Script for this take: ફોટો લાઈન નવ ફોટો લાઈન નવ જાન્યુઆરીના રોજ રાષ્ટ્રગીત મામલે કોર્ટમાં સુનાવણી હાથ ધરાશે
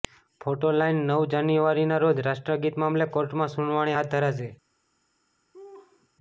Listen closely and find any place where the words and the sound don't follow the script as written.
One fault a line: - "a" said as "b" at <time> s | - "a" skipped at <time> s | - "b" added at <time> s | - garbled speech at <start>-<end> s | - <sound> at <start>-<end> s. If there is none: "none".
- "ફોટો લાઈન નવ" skipped at 1.3 s
- laugh at 5.5-6.1 s